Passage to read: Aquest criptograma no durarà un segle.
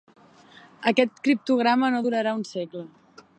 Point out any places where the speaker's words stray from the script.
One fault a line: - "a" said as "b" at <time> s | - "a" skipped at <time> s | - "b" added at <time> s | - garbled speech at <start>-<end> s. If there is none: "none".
none